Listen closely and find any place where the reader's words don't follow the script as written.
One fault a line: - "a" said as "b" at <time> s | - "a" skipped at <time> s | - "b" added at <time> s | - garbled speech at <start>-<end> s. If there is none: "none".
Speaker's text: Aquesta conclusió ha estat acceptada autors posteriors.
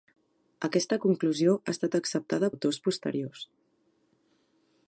none